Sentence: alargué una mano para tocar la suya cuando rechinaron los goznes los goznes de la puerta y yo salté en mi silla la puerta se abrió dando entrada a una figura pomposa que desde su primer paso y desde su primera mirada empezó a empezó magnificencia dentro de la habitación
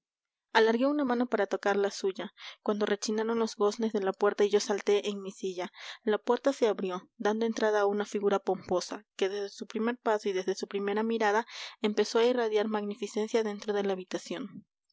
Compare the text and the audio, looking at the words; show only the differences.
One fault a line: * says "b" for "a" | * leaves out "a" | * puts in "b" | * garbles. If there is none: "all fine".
* leaves out "los goznes"
* says "irradiar" for "empezó"